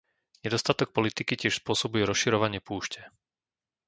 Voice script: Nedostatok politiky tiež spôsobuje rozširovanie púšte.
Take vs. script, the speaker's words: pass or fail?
pass